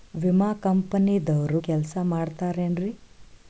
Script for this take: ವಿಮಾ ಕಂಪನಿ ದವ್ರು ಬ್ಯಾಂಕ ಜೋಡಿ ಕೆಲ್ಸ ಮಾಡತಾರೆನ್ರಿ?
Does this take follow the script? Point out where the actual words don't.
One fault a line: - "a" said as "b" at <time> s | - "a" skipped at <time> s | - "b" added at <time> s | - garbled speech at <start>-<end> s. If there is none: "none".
- "ಬ್ಯಾಂಕ ಜೋಡಿ" skipped at 1.6 s